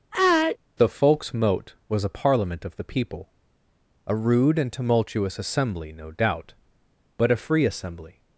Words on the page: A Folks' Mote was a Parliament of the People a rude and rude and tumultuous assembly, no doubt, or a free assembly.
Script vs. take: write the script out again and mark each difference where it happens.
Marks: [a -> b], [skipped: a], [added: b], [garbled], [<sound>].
[sneeze] [A -> The] Folks' Mote was a Parliament of the People a rude and [skipped: rude and] tumultuous assembly, no doubt, [or -> but] a free assembly.